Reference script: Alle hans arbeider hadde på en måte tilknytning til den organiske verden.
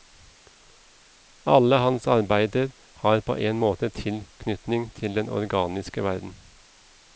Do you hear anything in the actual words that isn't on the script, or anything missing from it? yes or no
yes